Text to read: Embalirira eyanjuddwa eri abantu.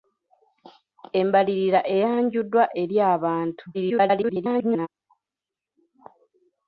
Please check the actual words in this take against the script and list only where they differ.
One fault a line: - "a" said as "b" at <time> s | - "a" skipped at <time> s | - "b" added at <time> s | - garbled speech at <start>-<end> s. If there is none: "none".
- garbled speech at 3.7-4.9 s